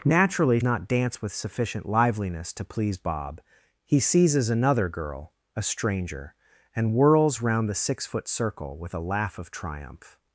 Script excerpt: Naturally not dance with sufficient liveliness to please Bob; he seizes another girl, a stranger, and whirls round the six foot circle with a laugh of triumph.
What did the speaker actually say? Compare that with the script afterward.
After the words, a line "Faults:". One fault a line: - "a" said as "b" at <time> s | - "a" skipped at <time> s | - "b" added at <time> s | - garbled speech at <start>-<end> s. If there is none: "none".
Naturally not dance with sufficient liveliness to please Bob; he seizes another girl, a stranger, and whirls round the six foot circle with a laugh of triumph.
Faults:
none